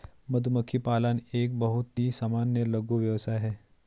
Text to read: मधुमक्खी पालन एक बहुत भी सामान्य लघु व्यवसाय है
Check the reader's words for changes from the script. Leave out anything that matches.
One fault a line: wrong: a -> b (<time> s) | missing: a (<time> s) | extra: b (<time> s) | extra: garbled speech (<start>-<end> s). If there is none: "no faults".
wrong: भी -> ही (2.0 s)